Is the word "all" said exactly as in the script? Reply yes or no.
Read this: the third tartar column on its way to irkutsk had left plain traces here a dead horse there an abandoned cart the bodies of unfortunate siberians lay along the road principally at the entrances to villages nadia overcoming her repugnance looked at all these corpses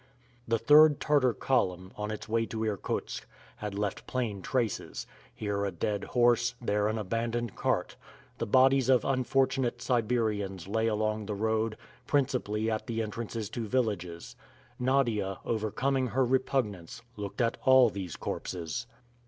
yes